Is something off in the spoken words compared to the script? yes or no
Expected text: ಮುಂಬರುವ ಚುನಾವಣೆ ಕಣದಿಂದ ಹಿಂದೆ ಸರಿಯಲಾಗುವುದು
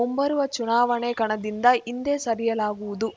no